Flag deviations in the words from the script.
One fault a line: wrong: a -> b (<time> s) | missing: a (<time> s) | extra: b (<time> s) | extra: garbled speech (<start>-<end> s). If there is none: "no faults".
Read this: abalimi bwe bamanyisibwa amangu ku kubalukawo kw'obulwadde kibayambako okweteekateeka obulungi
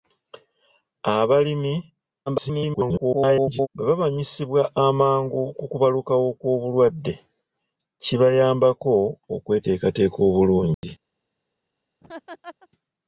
extra: garbled speech (2.3-3.7 s)